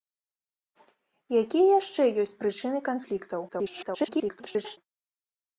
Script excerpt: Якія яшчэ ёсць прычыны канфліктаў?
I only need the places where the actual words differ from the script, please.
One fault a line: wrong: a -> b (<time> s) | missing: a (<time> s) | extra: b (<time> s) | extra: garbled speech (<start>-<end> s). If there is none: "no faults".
extra: garbled speech (3.5-4.8 s)